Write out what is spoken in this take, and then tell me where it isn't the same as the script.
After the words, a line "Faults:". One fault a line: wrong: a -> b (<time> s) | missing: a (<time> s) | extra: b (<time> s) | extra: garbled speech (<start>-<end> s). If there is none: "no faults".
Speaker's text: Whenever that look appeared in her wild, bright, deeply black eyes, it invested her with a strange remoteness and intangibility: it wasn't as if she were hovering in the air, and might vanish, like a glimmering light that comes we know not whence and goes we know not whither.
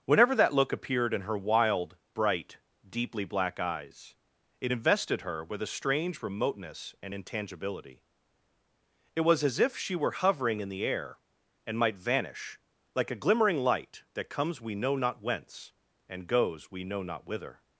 Whenever that look appeared in her wild, bright, deeply black eyes, it invested her with a strange remoteness and intangibility: it was as if she were hovering in the air, and might vanish, like a glimmering light that comes we know not whence and goes we know not whither.
Faults:
wrong: wasn't -> was (9.2 s)